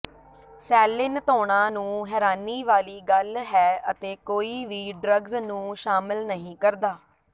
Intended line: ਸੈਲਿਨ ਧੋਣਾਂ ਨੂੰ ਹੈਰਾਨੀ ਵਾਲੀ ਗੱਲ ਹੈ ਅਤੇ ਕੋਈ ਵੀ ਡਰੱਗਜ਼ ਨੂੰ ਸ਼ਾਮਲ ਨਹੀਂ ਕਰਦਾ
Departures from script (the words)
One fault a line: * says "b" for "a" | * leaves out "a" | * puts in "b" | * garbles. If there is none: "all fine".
all fine